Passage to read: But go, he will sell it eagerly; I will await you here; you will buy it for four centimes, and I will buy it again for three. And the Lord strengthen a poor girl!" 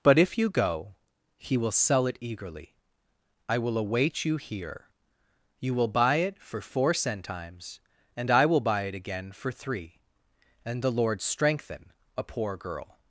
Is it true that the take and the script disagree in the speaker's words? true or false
true